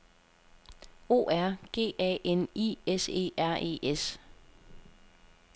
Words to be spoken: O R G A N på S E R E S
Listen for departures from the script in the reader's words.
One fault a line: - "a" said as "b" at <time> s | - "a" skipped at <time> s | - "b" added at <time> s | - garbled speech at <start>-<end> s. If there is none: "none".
- "på" said as "I" at 2.5 s